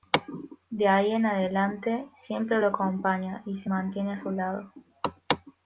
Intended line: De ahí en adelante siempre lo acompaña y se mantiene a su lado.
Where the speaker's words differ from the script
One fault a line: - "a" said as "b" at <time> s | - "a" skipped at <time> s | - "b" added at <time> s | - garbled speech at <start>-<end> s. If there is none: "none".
none